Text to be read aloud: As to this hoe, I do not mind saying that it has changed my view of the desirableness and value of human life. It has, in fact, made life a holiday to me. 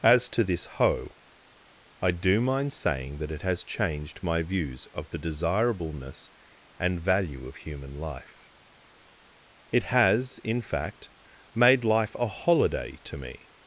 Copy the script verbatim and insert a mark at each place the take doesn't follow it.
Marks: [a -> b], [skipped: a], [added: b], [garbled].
As to this hoe, I do [skipped: not] mind saying that it has changed my [view -> views] of the desirableness and value of human life. It has, in fact, made life a holiday to me.